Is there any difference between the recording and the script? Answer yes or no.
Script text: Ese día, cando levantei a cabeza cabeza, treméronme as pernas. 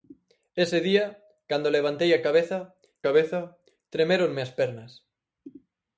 no